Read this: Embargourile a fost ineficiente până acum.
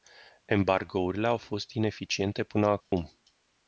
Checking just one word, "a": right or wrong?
wrong